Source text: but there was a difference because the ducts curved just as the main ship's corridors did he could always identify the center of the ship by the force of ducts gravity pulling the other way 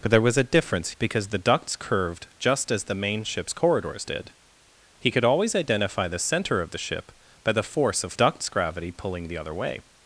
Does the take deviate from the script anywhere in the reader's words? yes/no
no